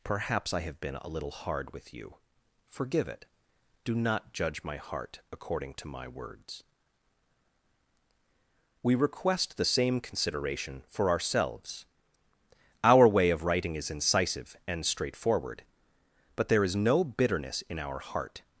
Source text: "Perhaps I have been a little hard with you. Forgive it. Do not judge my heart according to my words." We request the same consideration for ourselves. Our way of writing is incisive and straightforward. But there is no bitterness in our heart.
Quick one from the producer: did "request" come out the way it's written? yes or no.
yes